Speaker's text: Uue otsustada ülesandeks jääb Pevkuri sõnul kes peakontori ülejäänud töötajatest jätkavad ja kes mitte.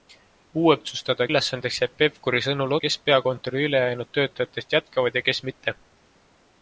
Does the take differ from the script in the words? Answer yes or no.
no